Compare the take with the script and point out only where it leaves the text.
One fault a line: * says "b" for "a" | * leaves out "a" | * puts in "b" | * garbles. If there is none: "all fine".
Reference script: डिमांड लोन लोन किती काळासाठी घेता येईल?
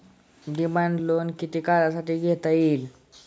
* leaves out "लोन"